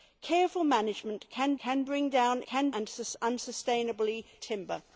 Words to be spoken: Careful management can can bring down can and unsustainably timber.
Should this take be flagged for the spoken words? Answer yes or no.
no